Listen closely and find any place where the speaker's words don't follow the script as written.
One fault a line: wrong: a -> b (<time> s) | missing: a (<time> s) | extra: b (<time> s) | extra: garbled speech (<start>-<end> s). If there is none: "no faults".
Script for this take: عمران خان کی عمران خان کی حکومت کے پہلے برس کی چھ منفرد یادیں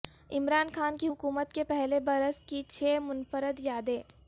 missing: عمران خان کی (1.1 s)